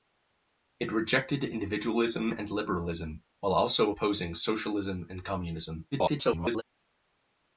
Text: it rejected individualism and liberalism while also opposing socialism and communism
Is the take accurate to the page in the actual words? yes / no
no